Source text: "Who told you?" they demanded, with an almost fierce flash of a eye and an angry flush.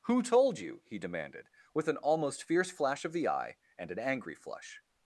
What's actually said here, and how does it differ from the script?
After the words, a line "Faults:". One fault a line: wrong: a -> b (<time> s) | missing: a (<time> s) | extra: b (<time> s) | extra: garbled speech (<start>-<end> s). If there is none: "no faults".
"Who told you?" he demanded, with an almost fierce flash of the eye and an angry flush.
Faults:
wrong: they -> he (0.8 s)
wrong: a -> the (3.1 s)